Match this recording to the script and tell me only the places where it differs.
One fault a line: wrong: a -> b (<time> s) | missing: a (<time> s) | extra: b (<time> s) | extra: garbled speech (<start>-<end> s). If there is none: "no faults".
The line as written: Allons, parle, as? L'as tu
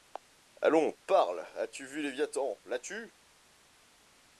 extra: tu vu Léviathan (1.7 s)